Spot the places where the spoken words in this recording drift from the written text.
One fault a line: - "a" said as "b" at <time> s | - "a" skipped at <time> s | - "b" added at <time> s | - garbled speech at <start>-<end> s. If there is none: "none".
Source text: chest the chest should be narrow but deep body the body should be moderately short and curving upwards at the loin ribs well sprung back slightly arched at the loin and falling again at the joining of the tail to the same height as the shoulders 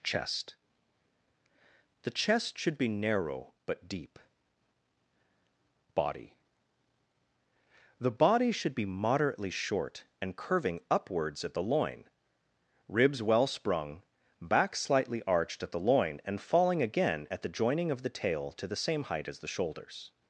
none